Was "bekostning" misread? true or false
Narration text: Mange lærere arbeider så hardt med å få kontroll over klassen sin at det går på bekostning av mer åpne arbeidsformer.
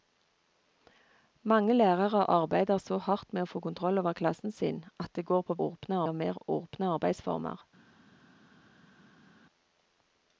true